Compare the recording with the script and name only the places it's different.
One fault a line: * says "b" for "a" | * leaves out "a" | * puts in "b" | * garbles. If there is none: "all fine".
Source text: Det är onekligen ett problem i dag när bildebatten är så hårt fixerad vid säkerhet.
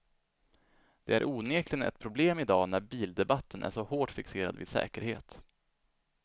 all fine